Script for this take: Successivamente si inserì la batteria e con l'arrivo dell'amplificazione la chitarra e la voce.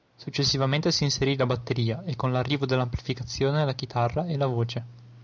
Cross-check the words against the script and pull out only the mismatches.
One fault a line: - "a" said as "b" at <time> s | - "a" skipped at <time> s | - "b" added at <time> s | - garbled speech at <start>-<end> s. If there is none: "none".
none